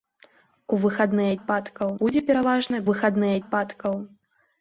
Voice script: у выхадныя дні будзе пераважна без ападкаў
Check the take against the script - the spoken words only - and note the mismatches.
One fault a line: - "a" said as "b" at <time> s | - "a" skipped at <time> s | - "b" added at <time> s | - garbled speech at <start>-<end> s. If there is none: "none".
- "дні" said as "ападкаў" at 1.4 s
- "без" said as "выхадныя" at 2.9 s